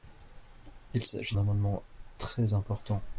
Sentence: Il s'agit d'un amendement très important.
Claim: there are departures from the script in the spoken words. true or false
true